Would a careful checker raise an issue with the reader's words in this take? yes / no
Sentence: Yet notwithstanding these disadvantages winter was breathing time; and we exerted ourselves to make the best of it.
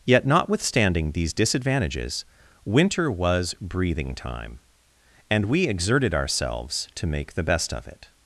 no